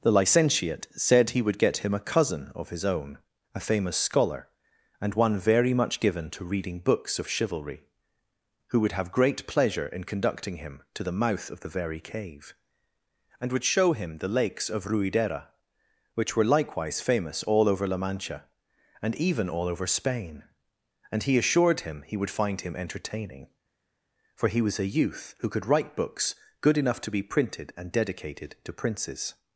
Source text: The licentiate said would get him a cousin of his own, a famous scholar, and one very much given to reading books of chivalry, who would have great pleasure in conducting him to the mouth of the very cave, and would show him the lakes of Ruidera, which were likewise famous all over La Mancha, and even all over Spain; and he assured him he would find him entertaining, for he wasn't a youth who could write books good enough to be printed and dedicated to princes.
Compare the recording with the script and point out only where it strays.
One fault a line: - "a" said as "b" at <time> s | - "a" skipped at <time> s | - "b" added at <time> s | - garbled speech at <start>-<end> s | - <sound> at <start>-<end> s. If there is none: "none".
- "he" added at 1.3 s
- "wasn't" said as "was" at 24.6 s